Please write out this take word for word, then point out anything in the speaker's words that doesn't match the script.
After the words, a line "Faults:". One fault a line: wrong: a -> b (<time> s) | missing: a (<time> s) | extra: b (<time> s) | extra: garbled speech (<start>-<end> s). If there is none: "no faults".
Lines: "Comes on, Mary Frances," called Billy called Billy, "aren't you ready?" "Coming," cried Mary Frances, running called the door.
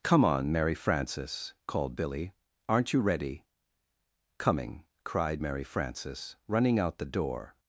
"Come on, Mary Frances," called Billy, "aren't you ready?" "Coming," cried Mary Frances, running out the door.
Faults:
wrong: Comes -> Come (0.0 s)
missing: called Billy (2.3 s)
wrong: called -> out (6.8 s)